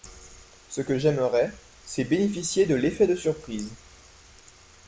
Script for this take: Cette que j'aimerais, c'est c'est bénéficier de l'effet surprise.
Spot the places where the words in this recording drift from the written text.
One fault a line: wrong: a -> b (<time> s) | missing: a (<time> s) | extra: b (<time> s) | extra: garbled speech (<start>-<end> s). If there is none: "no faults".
wrong: Cette -> Ce (0.7 s)
missing: c'est (2.0 s)
extra: de (3.0 s)